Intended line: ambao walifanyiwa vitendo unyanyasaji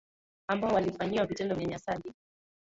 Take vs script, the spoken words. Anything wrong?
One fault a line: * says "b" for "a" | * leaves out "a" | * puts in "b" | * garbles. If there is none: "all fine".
all fine